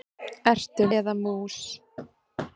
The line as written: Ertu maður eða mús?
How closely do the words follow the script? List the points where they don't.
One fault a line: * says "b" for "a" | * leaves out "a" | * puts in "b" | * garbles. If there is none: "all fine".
* leaves out "maður"